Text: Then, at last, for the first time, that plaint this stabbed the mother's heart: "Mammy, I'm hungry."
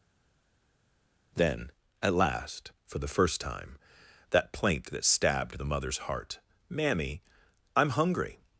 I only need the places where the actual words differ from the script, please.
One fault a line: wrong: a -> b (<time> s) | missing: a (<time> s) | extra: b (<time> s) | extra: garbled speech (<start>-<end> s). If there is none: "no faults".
wrong: this -> that (4.9 s)